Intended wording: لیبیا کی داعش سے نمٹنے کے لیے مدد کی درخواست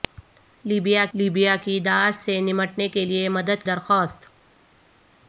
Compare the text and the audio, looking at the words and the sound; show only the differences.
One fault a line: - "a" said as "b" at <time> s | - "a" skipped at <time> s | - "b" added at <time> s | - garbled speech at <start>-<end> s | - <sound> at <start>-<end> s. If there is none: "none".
- "لیبیا" added at 1.1 s
- "کی" skipped at 3.6 s